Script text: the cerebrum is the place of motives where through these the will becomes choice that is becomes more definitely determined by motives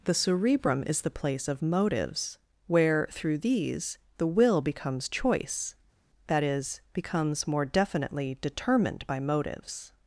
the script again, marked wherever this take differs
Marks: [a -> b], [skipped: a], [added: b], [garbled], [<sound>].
the cerebrum is the place of motives where through these the will becomes choice that is becomes more definitely determined by motives